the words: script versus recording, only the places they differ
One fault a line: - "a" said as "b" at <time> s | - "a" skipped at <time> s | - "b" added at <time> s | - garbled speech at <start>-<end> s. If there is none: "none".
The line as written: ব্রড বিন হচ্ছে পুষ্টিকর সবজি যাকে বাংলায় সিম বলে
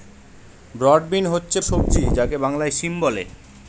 - "পুষ্টিকর" skipped at 1.6 s